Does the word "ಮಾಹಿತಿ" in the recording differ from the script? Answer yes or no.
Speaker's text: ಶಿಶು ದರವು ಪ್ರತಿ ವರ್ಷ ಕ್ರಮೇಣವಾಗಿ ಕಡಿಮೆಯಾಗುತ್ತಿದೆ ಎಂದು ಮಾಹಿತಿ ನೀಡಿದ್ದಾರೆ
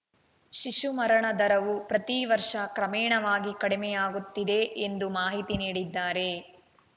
no